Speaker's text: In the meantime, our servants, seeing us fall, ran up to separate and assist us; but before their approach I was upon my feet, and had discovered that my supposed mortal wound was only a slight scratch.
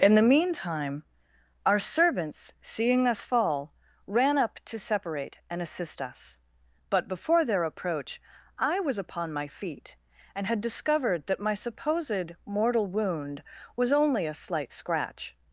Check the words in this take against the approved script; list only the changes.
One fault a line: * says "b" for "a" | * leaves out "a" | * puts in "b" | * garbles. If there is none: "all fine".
all fine